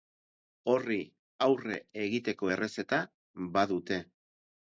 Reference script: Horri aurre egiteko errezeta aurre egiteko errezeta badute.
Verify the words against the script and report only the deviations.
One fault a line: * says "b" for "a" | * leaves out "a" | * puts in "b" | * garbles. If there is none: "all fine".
* leaves out "aurre egiteko errezeta"